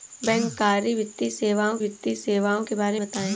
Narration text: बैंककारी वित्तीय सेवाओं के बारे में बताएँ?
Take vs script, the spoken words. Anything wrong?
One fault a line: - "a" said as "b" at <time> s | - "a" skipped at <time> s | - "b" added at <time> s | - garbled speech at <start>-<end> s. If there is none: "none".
- "वित्तीय सेवाओं" added at 1.8 s
- "में" skipped at 3.0 s